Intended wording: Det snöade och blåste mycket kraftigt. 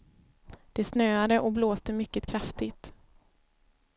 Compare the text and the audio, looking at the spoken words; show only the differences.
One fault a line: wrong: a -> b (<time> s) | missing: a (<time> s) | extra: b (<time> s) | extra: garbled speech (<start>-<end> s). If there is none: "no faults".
no faults